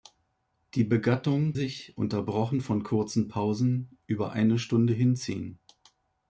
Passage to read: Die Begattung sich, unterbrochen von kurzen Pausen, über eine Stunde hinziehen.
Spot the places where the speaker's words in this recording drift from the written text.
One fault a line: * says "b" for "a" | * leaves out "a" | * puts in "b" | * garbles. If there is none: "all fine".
all fine